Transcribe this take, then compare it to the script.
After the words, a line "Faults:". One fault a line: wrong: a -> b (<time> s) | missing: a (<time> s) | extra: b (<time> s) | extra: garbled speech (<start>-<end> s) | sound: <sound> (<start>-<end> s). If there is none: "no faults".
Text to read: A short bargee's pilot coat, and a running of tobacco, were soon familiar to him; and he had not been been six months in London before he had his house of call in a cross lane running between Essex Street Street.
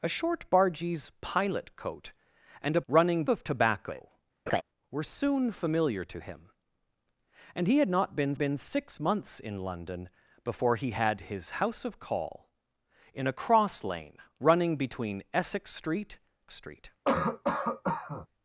A short bargee's pilot coat, and a running of tobacco, were soon familiar to him; and he had not been been six months in London before he had his house of call in a cross lane running between Essex Street Street.
Faults:
sound: laugh (4.5-4.6 s)
sound: cough (17.1-18.3 s)